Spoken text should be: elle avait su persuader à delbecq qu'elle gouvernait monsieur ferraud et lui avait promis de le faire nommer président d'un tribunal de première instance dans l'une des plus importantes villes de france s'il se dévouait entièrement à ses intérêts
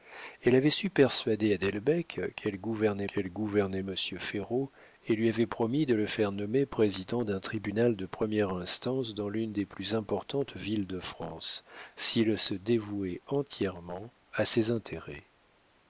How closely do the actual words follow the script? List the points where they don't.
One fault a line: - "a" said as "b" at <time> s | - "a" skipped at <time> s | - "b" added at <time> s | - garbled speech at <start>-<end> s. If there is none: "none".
- "qu'elle gouvernait" added at 3.1 s